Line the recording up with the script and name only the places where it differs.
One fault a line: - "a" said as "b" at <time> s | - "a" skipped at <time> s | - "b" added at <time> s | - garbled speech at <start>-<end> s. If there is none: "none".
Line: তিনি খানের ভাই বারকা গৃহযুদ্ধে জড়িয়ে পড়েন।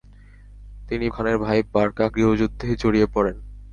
none